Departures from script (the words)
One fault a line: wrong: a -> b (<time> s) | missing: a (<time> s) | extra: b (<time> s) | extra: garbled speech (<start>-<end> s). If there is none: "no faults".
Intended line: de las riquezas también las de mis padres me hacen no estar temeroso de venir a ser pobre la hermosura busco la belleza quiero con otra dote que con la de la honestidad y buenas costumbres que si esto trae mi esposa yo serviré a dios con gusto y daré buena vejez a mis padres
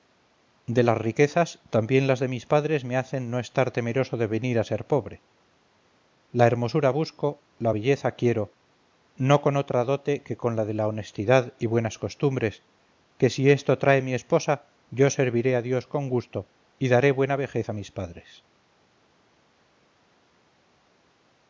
extra: no (9.1 s)